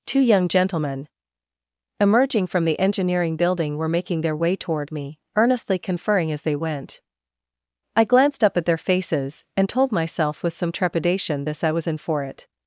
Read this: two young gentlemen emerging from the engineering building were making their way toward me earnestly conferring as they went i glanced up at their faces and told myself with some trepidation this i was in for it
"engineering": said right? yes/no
yes